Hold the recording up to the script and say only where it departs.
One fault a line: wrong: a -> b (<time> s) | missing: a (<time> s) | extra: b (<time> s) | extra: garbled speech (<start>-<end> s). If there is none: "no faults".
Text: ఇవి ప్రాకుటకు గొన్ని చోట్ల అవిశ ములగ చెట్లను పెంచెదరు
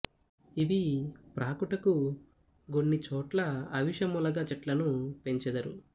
no faults